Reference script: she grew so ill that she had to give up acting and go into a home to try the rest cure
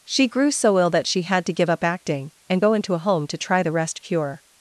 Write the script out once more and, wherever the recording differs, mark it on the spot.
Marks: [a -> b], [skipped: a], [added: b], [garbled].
she grew so ill that she had to give up acting and go into a home to try the rest cure